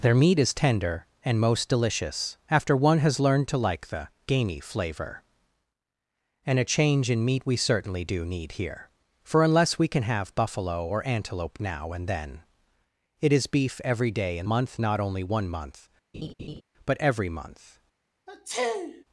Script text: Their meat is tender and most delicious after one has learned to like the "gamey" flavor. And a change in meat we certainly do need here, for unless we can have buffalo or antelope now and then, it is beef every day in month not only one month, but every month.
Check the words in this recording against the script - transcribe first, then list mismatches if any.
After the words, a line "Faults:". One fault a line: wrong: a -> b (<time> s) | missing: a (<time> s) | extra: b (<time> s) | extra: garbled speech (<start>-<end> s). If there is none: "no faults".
Their meat is tender and most delicious after one has learned to like the "gamey" flavor. And a change in meat we certainly do need here, for unless we can have buffalo or antelope now and then, it is beef every day in month not only one month, but every month.
Faults:
no faults